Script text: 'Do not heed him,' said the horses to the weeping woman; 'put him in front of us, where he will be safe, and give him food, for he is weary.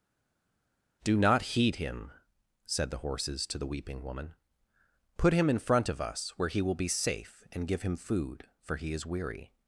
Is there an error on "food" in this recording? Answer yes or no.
no